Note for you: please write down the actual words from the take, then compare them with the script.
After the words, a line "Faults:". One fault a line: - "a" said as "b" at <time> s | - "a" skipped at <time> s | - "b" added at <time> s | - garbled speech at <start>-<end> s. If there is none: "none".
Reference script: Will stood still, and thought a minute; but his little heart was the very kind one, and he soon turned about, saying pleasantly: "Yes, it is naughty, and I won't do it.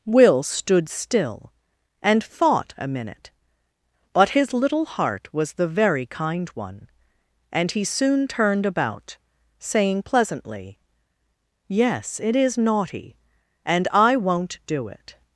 Will stood still, and thought a minute; but his little heart was the very kind one, and he soon turned about, saying pleasantly: "Yes, it is naughty, and I won't do it.
Faults:
none